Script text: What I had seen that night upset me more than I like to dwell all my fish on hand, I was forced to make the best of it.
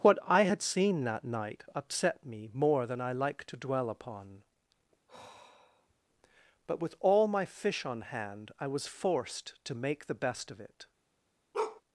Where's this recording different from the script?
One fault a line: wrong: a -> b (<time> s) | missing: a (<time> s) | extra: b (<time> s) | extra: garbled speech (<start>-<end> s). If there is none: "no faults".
extra: upon But with (3.9 s)